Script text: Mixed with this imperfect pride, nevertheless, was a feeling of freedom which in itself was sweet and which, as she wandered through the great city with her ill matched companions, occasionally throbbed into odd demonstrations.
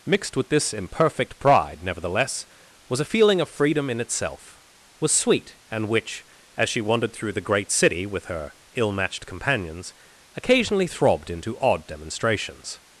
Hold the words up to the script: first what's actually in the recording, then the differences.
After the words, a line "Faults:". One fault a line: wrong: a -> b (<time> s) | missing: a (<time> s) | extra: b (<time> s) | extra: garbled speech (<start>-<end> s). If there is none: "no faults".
Mixed with this imperfect pride, nevertheless, was a feeling of freedom in itself was sweet and which, as she wandered through the great city with her ill matched companions, occasionally throbbed into odd demonstrations.
Faults:
missing: which (3.9 s)